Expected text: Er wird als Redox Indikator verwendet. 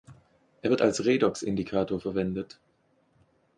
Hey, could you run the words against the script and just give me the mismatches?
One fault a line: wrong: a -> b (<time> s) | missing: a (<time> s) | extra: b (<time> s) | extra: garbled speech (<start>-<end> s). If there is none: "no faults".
no faults